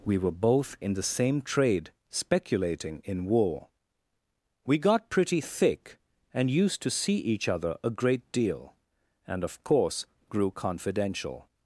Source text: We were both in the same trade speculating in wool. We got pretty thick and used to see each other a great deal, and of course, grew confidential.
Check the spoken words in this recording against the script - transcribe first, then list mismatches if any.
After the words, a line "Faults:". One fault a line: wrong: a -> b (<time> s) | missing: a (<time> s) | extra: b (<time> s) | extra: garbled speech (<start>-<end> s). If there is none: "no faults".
We were both in the same trade speculating in war. We got pretty thick and used to see each other a great deal, and of course, grew confidential.
Faults:
wrong: wool -> war (3.2 s)